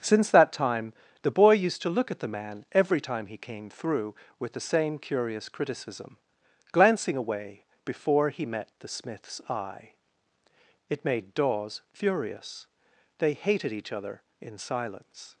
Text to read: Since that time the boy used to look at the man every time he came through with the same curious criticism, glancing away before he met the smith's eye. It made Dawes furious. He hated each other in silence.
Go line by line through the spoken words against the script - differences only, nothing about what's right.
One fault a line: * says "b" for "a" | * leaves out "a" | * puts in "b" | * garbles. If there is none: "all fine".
* says "They" for "He"